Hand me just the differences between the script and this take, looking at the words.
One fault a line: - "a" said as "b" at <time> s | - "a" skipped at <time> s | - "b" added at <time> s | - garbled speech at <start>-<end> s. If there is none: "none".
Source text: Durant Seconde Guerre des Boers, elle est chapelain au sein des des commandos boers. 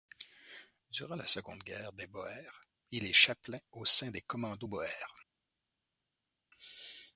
- "la" added at 1.1 s
- "elle" said as "il" at 2.9 s
- "des" skipped at 4.2 s